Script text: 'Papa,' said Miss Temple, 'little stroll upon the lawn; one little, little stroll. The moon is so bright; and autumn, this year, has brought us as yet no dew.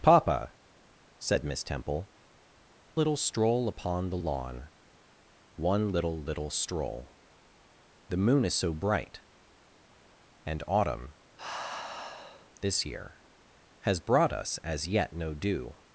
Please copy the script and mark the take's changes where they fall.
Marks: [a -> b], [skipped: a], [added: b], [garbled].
'Papa,' said Miss Temple, 'little stroll upon the lawn; one little, little stroll. The moon is so bright; and autumn, this year, has brought us as yet no dew.